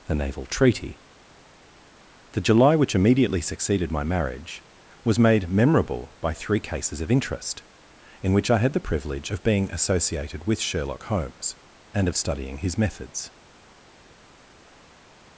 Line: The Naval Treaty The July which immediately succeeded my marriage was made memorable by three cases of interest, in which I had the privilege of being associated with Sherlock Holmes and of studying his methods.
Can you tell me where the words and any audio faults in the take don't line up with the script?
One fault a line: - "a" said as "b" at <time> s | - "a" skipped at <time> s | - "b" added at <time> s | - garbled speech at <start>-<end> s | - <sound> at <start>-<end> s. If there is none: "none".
none